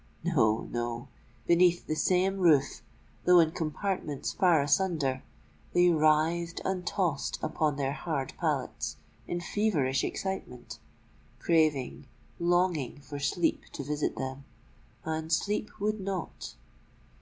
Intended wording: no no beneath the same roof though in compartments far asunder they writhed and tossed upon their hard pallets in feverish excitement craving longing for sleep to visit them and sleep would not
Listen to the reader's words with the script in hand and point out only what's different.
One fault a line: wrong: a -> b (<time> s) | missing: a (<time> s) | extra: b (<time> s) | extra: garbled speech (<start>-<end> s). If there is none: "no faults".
no faults